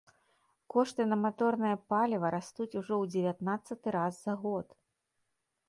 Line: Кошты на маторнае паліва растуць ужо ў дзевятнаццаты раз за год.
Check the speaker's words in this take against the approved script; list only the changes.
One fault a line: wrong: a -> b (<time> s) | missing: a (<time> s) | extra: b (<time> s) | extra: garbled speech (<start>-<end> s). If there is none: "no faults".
no faults